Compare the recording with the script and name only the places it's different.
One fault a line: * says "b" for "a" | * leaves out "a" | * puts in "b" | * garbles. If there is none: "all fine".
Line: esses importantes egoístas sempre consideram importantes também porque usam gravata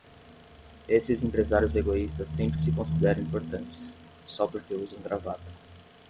* says "empresários" for "importantes"
* puts in "se"
* says "só" for "também"